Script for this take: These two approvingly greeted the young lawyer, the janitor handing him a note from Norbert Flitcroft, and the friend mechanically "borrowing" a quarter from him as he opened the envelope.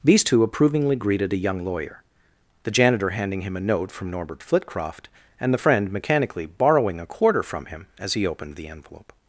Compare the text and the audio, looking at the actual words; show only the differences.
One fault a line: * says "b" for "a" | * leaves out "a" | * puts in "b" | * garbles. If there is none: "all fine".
* says "a" for "the"